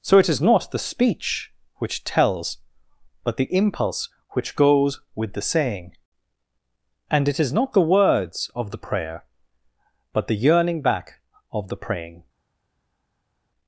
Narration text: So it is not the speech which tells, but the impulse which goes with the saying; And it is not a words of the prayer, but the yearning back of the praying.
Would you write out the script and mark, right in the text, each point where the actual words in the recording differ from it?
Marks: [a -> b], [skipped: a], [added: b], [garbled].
So it is not the speech which tells, but the impulse which goes with the saying; And it is not [a -> the] words of the prayer, but the yearning back of the praying.